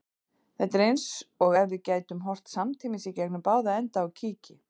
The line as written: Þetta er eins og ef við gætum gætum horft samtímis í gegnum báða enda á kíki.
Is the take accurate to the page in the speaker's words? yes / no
no